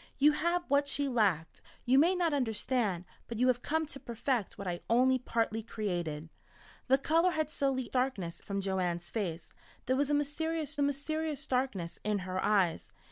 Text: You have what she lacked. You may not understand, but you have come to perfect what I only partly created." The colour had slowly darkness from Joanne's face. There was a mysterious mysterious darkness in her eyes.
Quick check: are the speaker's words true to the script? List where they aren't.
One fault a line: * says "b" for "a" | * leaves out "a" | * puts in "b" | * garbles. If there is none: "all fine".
all fine